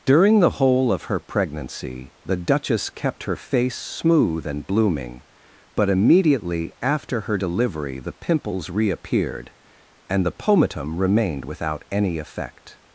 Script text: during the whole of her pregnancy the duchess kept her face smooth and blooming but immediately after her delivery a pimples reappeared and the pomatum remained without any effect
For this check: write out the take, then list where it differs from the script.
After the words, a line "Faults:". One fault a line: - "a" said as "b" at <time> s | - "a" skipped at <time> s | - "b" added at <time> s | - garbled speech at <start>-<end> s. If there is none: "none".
during the whole of her pregnancy the duchess kept her face smooth and blooming but immediately after her delivery the pimples reappeared and the pomatum remained without any effect
Faults:
- "a" said as "the" at 8.0 s